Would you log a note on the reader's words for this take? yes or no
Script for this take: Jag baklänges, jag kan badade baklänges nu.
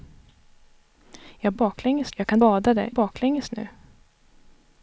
no